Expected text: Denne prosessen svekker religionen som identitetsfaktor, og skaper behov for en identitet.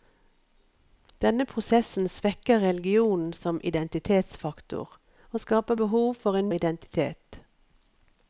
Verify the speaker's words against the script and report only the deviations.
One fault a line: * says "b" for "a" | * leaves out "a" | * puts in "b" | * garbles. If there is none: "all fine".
all fine